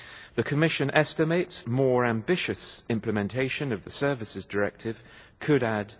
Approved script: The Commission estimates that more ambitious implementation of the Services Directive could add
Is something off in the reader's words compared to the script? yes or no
yes